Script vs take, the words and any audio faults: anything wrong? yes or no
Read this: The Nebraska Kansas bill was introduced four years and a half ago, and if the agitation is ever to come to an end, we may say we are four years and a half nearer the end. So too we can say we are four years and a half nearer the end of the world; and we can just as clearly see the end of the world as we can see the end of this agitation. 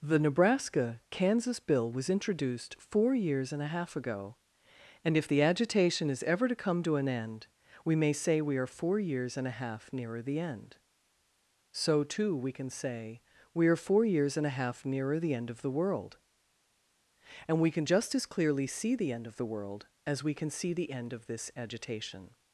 no